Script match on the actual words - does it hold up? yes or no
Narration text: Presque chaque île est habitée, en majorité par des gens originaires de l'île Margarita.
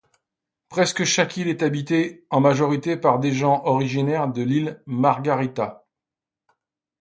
yes